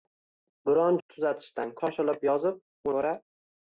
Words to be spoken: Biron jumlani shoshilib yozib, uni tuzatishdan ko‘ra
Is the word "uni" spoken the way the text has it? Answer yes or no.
no